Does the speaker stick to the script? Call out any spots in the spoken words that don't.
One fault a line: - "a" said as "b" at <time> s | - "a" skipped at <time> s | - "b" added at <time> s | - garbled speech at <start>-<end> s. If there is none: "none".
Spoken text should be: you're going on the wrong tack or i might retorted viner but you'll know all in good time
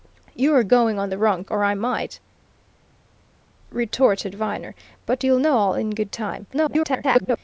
- "tack" skipped at 1.4 s
- garbled speech at 6.5-7.4 s